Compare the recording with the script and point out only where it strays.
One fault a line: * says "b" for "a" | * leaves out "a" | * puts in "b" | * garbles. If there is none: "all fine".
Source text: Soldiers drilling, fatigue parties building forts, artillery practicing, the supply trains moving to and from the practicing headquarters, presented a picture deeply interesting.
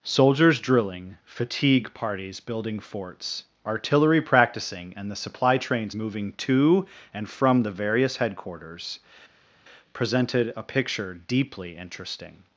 * puts in "and"
* says "various" for "practicing"